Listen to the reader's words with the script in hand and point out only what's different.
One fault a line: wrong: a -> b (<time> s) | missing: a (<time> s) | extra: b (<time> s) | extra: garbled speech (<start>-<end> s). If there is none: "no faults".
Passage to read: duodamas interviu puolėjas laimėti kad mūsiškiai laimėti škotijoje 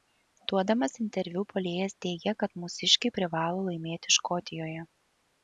wrong: laimėti -> teigė (2.1 s)
extra: privalo (3.2 s)